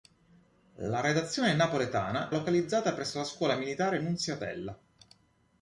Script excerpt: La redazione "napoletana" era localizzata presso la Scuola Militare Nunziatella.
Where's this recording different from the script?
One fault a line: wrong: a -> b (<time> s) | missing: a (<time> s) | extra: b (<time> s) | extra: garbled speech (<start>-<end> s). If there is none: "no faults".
missing: era (2.3 s)